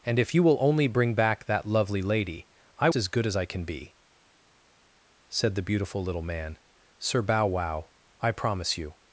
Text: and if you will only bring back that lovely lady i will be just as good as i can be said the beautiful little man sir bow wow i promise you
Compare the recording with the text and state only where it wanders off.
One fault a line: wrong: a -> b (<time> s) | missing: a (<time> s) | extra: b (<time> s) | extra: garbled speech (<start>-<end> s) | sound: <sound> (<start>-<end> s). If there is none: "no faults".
missing: will be just (2.9 s)